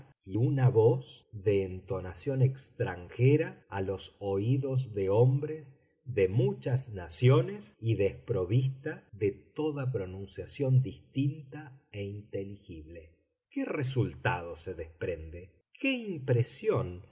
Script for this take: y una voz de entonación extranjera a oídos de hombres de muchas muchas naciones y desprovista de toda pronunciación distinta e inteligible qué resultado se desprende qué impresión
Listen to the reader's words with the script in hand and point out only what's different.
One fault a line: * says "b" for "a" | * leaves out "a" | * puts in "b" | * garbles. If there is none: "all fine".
* puts in "los"
* leaves out "muchas"